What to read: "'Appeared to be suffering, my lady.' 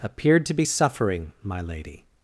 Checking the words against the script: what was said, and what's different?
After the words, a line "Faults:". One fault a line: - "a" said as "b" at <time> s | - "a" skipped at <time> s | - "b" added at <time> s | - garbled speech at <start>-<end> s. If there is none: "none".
"'Appeared to be suffering, my lady.'
Faults:
none